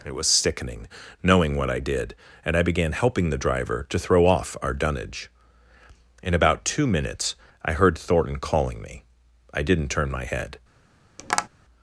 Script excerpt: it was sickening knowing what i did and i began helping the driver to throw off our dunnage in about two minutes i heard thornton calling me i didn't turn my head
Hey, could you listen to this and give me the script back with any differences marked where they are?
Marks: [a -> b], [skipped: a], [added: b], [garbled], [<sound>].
it was sickening knowing what i did and i began helping the driver to throw off our dunnage in about two minutes i heard thornton calling me i didn't turn my head [tap]